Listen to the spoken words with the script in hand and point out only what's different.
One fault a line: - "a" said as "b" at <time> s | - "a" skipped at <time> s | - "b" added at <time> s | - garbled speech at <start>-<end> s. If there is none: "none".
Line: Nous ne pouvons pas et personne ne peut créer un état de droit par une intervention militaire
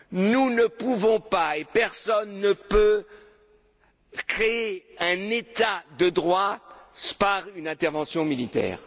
none